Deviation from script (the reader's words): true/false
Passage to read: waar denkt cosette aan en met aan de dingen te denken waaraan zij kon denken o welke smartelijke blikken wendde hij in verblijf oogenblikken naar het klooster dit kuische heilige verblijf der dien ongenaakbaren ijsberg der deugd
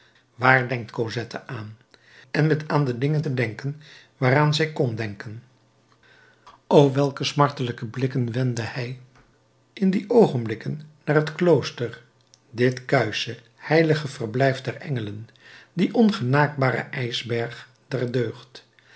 true